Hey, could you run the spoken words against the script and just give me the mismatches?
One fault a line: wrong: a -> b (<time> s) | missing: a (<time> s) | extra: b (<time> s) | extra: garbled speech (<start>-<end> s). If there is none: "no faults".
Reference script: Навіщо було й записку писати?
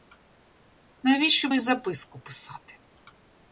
missing: було (1.5 s)